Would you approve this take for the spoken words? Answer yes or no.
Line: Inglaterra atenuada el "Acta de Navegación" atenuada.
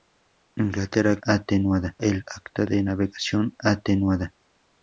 yes